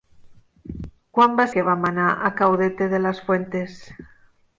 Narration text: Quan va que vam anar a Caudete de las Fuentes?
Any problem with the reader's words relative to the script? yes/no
no